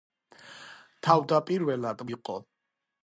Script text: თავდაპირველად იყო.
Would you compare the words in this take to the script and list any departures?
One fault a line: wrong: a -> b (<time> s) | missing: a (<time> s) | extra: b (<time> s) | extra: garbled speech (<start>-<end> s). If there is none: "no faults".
no faults